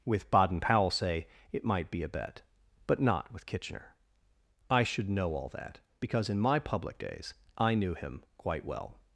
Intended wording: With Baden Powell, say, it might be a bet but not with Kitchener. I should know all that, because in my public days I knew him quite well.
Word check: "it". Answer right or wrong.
right